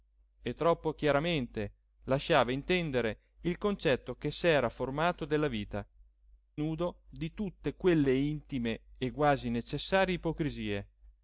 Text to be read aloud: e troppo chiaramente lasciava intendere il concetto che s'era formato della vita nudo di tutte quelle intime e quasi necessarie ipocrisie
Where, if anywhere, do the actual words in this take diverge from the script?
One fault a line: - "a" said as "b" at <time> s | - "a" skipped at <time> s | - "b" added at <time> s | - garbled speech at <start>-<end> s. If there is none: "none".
none